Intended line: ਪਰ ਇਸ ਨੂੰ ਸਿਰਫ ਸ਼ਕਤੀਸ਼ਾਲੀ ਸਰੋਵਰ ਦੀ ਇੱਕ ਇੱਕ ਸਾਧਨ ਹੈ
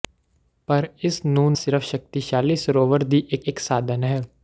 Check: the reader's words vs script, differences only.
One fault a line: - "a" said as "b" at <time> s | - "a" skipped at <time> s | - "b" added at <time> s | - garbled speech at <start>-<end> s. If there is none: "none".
none